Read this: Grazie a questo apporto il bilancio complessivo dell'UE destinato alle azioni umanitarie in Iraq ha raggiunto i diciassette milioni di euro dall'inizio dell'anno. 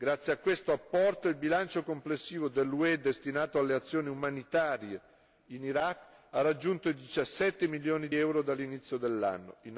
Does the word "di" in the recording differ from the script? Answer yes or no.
yes